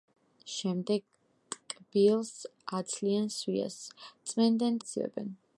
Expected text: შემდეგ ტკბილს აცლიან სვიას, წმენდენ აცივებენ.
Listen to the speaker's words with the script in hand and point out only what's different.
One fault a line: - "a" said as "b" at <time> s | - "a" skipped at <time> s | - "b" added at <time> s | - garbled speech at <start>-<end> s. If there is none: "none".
none